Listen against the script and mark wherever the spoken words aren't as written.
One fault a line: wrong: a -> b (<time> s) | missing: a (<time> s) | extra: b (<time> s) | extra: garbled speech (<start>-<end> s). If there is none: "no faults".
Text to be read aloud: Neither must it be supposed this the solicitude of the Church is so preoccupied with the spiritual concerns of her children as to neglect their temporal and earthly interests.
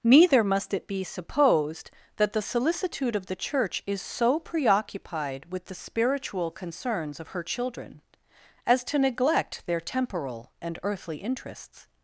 wrong: this -> that (2.1 s)